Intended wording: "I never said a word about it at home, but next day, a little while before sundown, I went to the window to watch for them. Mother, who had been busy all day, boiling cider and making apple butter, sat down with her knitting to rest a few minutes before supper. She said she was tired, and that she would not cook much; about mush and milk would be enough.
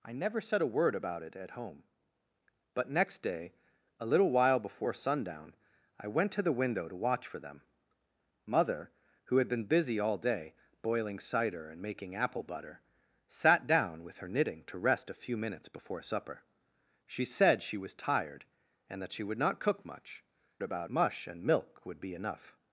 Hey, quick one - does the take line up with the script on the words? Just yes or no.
yes